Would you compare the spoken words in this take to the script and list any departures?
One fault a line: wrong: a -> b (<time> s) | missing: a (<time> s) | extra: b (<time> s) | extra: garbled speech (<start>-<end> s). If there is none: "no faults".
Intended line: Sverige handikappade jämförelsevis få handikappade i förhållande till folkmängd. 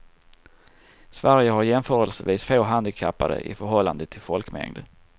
wrong: handikappade -> har (1.5 s)